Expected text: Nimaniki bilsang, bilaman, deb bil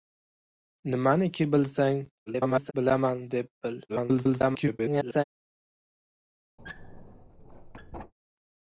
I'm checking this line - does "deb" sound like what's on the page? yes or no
yes